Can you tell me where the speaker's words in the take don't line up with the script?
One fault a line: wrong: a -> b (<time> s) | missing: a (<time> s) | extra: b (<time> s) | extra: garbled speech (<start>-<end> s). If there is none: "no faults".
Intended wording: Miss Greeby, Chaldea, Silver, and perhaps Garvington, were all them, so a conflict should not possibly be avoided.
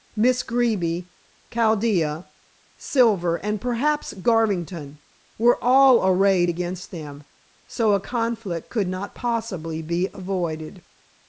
extra: arrayed against (6.0 s)
wrong: should -> could (8.7 s)